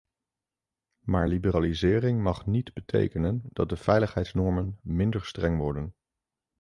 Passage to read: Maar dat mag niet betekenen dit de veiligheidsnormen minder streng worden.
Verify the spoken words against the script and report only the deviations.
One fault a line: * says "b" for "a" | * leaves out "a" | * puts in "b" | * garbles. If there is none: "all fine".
* says "liberalisering" for "dat"
* says "dat" for "dit"